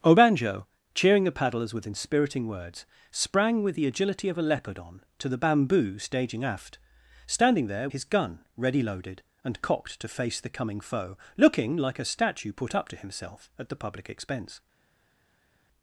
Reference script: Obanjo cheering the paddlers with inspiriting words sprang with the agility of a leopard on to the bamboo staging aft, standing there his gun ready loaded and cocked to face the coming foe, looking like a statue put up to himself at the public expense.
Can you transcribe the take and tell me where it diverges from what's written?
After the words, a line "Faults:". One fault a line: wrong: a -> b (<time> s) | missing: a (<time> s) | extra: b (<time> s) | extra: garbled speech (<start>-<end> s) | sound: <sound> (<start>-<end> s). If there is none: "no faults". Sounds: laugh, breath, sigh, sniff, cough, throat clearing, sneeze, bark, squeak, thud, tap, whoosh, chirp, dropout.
Obanjo cheering the paddlers with inspiriting words sprang with the agility of a leopard on to the bamboo staging aft, standing there his gun ready loaded and cocked to face the coming foe, looking like a statue put up to himself at the public expense.
Faults:
no faults